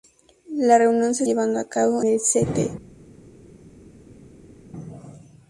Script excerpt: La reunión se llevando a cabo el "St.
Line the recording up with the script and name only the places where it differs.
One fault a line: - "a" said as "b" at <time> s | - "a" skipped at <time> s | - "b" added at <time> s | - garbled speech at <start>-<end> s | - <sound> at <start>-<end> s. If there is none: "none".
none